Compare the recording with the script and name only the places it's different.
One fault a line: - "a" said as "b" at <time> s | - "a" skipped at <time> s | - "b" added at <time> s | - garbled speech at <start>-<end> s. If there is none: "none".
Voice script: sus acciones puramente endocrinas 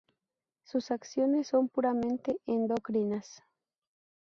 - "son" added at 1.5 s